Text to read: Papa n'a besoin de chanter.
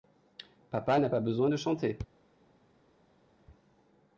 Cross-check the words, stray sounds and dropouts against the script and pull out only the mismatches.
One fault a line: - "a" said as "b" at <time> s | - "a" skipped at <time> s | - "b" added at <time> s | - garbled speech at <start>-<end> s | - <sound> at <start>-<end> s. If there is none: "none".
- "pas" added at 1.1 s